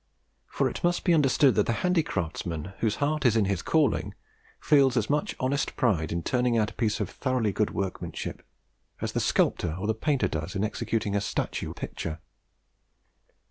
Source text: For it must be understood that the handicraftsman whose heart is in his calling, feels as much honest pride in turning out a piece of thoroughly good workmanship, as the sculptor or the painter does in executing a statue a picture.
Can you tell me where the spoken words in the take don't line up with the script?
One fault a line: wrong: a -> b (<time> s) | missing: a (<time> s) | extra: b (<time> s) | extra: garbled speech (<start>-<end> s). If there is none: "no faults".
no faults